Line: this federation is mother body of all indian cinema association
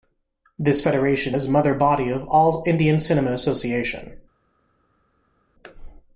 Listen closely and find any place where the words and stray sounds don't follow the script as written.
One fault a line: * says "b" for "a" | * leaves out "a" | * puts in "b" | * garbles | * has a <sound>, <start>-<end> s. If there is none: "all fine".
all fine